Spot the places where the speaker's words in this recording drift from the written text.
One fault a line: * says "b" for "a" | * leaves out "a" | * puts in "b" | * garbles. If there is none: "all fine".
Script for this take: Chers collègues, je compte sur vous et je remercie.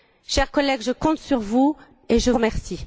all fine